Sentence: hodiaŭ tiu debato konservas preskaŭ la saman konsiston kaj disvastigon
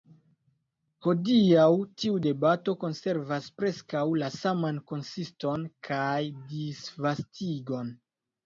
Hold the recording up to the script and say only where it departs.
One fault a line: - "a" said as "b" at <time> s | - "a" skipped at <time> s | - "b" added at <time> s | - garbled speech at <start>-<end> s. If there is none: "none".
none